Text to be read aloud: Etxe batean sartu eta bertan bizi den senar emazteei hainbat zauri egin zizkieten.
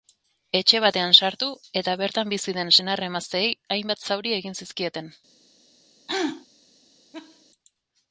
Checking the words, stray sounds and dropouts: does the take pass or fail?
fail